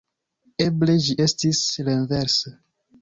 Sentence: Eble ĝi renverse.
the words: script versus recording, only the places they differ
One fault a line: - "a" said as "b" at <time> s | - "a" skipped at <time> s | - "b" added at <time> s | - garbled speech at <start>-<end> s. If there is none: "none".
- "estis" added at 1.2 s